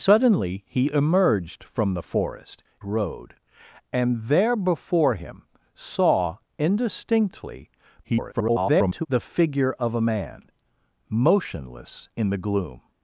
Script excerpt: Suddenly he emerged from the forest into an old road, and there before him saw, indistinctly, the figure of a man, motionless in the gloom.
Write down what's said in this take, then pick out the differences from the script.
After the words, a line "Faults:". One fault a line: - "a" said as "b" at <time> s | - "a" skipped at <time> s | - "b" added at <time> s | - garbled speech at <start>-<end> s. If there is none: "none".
Suddenly he emerged from the forest road, and there before him saw, indistinctly, [garbled] the figure of a man, motionless in the gloom.
Faults:
- "into an old" skipped at 2.6 s
- garbled speech at 8.0-9.1 s